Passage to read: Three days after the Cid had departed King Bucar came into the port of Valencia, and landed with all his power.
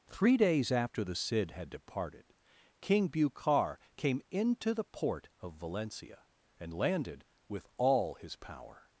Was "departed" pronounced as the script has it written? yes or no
yes